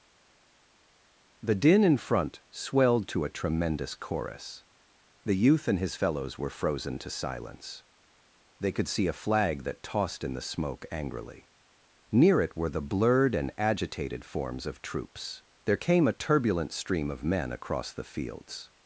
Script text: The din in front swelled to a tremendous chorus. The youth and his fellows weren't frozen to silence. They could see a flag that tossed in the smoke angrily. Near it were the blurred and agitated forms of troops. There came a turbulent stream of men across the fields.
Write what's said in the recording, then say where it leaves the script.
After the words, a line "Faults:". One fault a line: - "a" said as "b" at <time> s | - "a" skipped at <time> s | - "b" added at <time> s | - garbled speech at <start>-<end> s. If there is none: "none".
The din in front swelled to a tremendous chorus. The youth and his fellows were frozen to silence. They could see a flag that tossed in the smoke angrily. Near it were the blurred and agitated forms of troops. There came a turbulent stream of men across the fields.
Faults:
- "weren't" said as "were" at 6.4 s